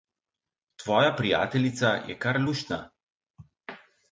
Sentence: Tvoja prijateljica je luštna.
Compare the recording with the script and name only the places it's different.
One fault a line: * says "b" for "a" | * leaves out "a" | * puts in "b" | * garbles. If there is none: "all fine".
* puts in "kar"